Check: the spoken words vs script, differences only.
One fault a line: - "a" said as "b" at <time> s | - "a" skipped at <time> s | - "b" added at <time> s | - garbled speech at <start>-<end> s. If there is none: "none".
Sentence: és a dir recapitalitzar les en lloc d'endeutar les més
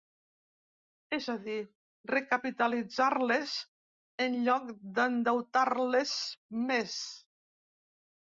none